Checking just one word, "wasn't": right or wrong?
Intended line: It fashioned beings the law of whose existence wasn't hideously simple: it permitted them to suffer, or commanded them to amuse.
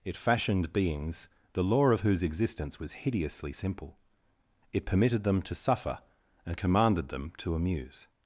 wrong